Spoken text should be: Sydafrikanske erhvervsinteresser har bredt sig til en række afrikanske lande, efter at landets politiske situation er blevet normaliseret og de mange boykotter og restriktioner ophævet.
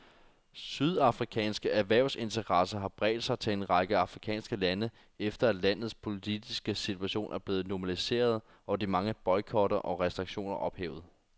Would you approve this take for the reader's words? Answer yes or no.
yes